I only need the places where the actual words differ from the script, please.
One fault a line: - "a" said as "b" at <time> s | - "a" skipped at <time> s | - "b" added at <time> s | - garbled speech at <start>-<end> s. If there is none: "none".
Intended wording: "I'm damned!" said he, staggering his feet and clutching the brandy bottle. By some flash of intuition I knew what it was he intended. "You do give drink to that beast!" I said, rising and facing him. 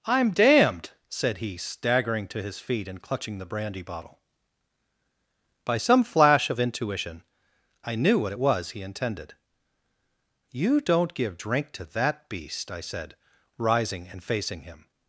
- "to" added at 2.3 s
- "do" said as "don't" at 10.8 s